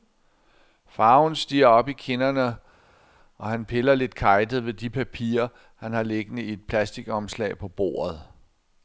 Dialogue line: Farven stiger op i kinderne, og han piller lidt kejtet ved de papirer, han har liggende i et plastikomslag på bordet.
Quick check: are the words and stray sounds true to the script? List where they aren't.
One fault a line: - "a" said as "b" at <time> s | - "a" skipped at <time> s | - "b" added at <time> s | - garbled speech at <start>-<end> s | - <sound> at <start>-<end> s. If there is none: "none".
none